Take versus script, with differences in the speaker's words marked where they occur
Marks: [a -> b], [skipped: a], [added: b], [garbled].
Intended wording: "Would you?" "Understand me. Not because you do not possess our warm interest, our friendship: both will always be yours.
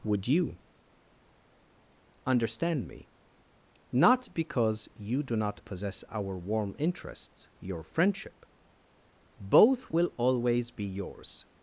"Would you?" "Understand me. Not because you do not possess our warm interest, [our -> your] friendship: both will always be yours.